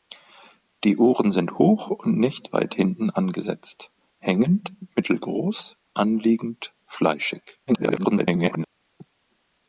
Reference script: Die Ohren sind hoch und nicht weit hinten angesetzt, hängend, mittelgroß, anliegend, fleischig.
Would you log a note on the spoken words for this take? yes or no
yes